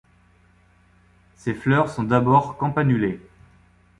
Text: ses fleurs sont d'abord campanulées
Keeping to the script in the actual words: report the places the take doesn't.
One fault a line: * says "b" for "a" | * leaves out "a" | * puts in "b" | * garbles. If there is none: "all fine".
all fine